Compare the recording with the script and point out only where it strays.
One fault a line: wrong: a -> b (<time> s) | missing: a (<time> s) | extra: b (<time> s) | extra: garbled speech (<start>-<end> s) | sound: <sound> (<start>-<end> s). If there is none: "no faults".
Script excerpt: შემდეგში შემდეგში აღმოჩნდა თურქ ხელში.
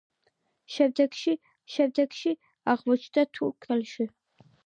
no faults